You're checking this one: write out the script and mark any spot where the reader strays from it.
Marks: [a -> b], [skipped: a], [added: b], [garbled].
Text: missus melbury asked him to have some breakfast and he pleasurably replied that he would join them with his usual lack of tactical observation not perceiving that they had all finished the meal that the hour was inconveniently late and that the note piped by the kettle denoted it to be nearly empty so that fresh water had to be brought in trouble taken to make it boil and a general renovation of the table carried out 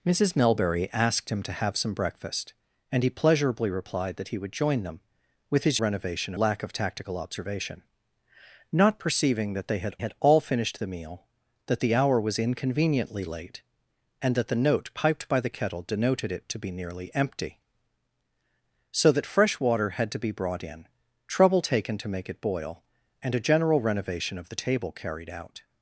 missus melbury asked him to have some breakfast and he pleasurably replied that he would join them with his [usual -> renovation] lack of tactical observation not perceiving that they had [added: had] all finished the meal that the hour was inconveniently late and that the note piped by the kettle denoted it to be nearly empty so that fresh water had to be brought in trouble taken to make it boil and a general renovation of the table carried out